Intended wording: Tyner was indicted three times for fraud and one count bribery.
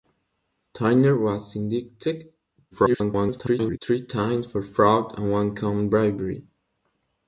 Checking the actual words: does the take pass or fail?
fail